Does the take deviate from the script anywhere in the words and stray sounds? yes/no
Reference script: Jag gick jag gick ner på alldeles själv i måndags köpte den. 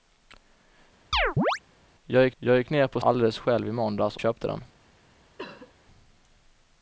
yes